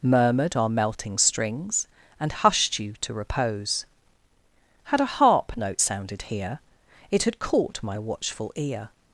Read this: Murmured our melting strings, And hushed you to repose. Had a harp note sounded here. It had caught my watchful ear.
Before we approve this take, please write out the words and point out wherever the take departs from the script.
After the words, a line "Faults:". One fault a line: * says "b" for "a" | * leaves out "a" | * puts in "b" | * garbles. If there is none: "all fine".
Murmured our melting strings, And hushed you to repose. Had a harp note sounded here. It had caught my watchful ear.
Faults:
all fine